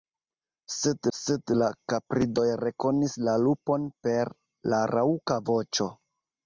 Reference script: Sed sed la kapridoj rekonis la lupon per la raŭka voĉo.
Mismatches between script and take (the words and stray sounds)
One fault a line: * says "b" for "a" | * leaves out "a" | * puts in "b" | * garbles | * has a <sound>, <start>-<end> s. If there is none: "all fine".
all fine